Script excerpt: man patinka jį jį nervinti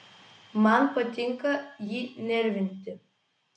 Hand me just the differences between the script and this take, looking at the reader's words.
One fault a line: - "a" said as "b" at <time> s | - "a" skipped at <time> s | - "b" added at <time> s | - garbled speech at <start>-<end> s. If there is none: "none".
- "jį" skipped at 2.0 s